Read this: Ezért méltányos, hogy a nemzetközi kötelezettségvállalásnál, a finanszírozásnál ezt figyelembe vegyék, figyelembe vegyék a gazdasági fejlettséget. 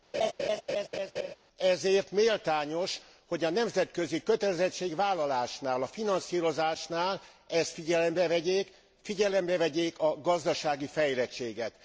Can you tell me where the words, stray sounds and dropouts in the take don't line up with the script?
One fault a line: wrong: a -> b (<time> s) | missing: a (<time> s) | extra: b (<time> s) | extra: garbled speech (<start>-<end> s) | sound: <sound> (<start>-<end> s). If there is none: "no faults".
sound: laugh (0.1-1.4 s)